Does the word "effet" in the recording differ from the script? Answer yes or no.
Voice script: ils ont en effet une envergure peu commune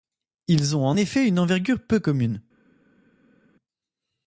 no